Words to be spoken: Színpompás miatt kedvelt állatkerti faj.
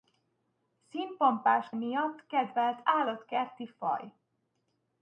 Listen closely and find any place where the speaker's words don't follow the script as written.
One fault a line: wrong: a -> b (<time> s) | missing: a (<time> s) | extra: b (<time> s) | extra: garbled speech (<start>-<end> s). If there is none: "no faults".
no faults